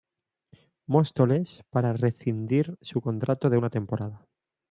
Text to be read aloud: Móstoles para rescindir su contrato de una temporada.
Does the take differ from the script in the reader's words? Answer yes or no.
no